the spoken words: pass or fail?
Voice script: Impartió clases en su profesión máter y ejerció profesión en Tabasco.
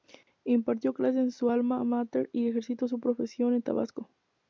fail